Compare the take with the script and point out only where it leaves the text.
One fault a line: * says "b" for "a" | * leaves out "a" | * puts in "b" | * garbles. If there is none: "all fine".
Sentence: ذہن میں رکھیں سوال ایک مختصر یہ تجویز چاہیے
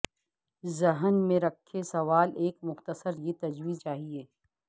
all fine